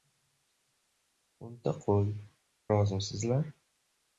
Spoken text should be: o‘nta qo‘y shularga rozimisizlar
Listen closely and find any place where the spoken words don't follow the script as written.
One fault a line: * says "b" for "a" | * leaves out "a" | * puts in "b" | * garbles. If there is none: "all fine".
* leaves out "shularga"